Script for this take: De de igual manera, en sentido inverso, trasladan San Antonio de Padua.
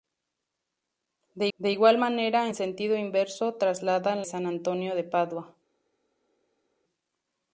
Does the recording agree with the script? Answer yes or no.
yes